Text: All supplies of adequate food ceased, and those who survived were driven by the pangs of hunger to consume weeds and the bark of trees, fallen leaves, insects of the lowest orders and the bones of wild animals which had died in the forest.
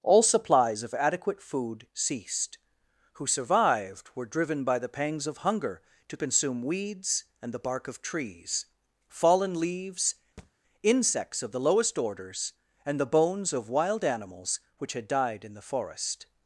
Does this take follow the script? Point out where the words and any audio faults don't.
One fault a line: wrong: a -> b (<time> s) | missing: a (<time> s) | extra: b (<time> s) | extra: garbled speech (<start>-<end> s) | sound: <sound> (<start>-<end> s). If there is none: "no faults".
missing: and those (2.6 s)
sound: thud (10.4-10.5 s)